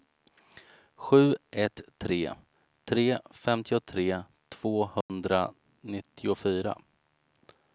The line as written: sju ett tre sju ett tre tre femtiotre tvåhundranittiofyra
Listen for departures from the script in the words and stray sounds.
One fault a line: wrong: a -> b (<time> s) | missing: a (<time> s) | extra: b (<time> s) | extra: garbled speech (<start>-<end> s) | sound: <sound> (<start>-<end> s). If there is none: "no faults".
missing: sju ett tre (2.3 s)
sound: dropout (5.0-5.1 s)